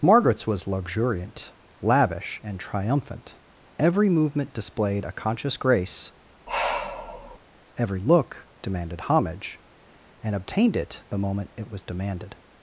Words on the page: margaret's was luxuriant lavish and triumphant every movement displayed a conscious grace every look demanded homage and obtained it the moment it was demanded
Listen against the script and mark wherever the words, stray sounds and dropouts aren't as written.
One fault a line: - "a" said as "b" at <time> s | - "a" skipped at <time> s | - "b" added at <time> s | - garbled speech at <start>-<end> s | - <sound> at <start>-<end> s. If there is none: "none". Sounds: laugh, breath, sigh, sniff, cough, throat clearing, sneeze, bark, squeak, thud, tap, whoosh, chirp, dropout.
- sigh at 6.5-7.4 s